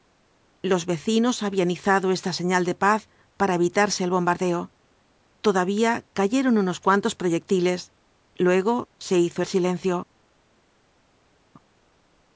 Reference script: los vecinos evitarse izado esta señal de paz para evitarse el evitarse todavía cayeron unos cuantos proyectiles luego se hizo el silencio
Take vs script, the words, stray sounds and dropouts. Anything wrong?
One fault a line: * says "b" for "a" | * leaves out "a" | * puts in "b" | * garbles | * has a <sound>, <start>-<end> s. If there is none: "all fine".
* says "habían" for "evitarse"
* says "bombardeo" for "evitarse"